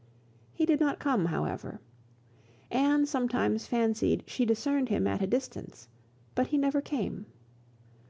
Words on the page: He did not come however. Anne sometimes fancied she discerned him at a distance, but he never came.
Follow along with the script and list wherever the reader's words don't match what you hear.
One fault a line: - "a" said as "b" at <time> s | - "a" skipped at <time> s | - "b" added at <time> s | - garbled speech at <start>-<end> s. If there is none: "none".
none